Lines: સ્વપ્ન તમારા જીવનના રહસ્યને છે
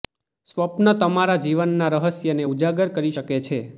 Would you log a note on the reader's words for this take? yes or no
yes